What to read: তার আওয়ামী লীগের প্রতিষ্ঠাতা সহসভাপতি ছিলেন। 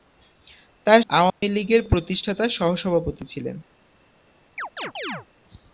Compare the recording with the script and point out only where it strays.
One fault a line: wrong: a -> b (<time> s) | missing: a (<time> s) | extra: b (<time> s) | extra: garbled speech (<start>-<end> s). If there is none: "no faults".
no faults